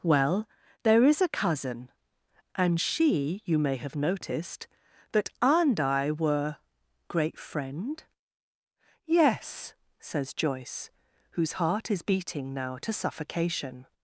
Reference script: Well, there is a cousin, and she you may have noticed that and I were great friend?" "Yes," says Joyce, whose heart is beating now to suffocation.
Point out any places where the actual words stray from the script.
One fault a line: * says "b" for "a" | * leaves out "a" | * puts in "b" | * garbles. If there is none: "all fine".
all fine